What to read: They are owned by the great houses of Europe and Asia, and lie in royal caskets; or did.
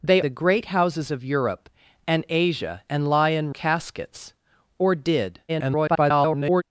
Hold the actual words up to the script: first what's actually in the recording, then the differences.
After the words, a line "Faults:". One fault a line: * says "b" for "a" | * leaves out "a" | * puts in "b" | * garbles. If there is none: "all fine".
They the great houses of Europe and Asia, and lie in caskets; or did. [garbled]
Faults:
* leaves out "are owned by"
* leaves out "royal"
* garbles